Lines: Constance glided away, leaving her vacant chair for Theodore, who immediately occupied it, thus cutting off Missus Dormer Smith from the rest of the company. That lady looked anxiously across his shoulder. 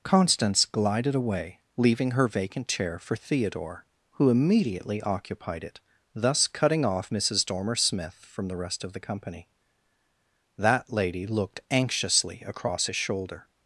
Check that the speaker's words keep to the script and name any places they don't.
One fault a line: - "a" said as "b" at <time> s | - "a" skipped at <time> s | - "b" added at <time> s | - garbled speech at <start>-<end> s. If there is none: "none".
none